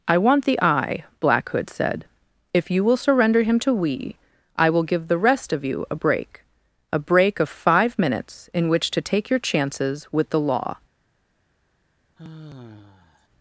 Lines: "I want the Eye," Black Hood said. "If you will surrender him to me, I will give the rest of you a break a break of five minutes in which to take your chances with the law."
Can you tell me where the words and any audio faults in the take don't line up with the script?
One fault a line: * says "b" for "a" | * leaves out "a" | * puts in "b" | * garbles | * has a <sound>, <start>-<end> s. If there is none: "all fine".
* says "we" for "me"
* has a sigh, 12.2-13.3 s